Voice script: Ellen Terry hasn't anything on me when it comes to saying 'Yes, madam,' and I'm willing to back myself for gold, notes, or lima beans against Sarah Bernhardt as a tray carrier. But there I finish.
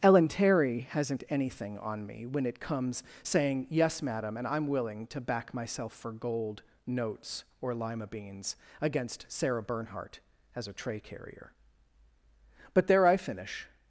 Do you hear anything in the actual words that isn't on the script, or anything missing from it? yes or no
yes